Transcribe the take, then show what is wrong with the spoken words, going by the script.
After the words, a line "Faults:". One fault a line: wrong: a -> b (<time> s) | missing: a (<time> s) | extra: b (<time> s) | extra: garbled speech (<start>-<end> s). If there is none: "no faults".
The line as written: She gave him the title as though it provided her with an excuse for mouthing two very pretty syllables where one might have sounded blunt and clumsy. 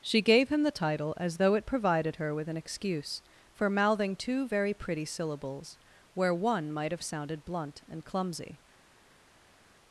She gave him the title as though it provided her with an excuse for mouthing two very pretty syllables where one might have sounded blunt and clumsy.
Faults:
no faults